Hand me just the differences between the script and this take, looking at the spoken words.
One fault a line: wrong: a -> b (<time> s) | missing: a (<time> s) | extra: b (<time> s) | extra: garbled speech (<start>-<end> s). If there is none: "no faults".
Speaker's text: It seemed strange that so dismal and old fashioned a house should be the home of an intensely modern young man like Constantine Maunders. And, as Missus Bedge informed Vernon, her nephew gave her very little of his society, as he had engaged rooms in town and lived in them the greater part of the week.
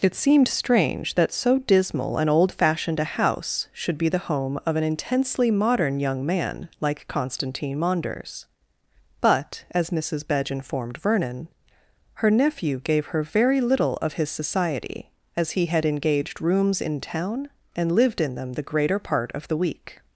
wrong: And -> But (9.2 s)